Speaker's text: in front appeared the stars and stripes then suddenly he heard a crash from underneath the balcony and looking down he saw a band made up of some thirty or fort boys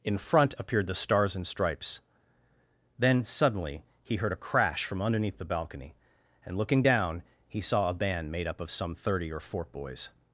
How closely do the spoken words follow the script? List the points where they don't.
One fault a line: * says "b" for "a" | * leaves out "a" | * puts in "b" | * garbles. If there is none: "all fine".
all fine